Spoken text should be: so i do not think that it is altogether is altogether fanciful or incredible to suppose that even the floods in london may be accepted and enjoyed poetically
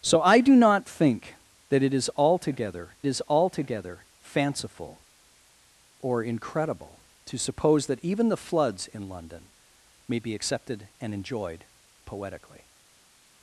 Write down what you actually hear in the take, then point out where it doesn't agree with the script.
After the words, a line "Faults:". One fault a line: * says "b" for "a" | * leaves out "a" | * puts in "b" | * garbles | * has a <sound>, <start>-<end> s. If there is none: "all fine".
so i do not think that it is altogether is altogether fanciful or incredible to suppose that even the floods in london may be accepted and enjoyed poetically
Faults:
all fine